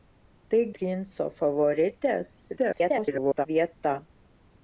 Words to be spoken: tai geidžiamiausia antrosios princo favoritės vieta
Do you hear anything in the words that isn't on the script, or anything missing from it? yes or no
yes